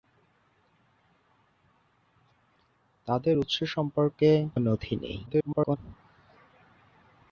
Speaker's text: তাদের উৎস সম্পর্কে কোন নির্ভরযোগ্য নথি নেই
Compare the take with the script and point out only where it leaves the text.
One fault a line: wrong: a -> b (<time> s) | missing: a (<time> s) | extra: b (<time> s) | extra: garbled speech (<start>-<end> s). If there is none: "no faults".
missing: কোন নির্ভরযোগ্য (4.3 s)
extra: garbled speech (5.3-5.8 s)